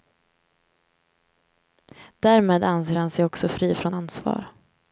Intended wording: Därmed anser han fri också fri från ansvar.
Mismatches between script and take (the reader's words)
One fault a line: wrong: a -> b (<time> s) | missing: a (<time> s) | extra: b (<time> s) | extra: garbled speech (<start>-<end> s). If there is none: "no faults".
wrong: fri -> sig (3.1 s)